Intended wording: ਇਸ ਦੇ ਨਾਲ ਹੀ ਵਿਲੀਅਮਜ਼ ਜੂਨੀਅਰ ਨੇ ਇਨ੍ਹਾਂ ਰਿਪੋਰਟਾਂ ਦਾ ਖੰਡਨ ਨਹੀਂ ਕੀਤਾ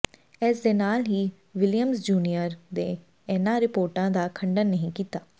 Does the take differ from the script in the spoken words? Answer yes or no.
no